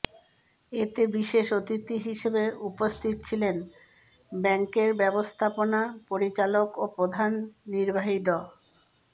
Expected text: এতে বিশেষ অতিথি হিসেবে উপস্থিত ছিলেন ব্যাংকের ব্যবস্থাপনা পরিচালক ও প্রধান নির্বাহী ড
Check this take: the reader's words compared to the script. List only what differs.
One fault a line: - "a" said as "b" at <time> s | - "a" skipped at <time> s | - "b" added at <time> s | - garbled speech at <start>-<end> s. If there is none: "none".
none